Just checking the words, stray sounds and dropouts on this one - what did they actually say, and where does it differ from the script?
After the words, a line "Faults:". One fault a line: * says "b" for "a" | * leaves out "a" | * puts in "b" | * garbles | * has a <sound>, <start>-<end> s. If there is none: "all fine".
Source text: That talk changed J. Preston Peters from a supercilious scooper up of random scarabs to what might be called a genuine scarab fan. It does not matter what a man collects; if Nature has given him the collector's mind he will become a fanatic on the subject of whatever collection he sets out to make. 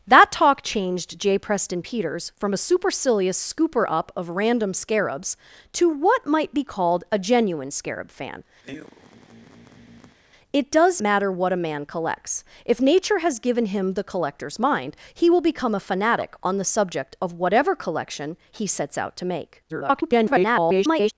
That talk changed J. Preston Peters from a supercilious scooper up of random scarabs to what might be called a genuine scarab fan. It does matter what a man collects; if Nature has given him the collector's mind he will become a fanatic on the subject of whatever collection he sets out to make. [garbled]
Faults:
* has a sigh, 8.6-10.2 s
* leaves out "not"
* garbles